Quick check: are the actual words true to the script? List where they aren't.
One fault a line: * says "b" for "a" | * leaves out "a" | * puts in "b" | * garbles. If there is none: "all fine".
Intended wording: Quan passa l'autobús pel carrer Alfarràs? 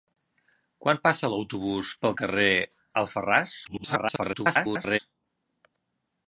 * garbles